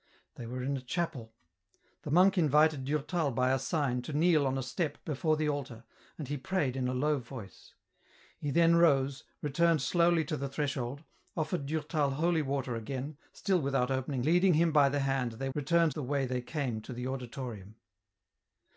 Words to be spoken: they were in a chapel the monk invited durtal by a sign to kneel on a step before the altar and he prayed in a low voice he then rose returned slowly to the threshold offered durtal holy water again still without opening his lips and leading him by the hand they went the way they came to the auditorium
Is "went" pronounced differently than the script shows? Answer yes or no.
yes